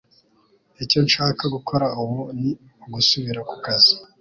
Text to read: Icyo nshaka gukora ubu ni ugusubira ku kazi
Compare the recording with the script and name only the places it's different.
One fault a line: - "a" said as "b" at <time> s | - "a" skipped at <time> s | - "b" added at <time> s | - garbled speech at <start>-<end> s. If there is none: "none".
none